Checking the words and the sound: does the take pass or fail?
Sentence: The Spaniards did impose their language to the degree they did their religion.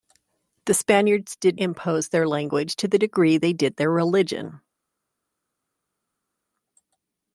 pass